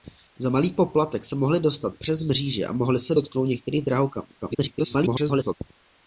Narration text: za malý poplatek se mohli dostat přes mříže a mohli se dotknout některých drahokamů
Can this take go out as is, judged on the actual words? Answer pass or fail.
fail